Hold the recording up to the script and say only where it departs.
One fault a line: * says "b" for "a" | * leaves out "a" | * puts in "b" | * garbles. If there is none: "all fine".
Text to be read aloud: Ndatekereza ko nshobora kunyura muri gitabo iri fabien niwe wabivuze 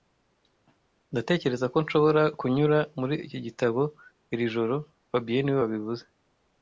* puts in "iki"
* puts in "joro"